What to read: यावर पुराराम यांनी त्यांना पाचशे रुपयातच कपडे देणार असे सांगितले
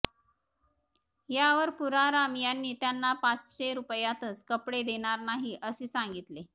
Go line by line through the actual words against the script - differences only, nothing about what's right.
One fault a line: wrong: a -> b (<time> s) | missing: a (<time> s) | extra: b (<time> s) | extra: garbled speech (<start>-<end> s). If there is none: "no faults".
extra: नाही (5.2 s)